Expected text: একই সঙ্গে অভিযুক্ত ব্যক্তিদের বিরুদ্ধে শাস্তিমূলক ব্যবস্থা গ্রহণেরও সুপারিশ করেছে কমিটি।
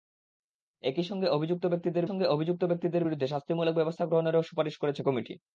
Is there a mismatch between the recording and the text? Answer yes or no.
yes